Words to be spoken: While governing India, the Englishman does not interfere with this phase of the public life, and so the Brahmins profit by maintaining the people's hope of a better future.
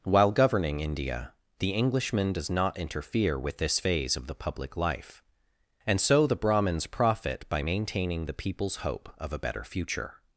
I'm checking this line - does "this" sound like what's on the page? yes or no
yes